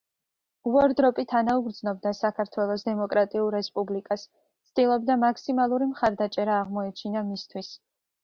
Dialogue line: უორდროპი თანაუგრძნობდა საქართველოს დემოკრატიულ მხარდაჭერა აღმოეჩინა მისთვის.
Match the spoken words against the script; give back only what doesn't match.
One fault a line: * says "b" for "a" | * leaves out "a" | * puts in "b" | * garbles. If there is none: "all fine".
* puts in "რესპუბლიკას ცდილობდა მაქსიმალური"